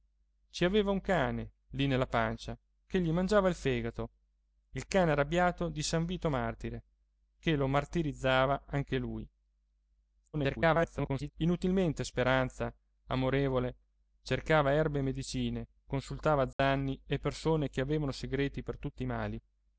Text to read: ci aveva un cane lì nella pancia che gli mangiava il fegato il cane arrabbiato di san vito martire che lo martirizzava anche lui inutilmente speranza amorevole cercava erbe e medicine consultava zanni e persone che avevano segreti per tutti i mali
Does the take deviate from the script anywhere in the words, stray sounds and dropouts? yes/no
yes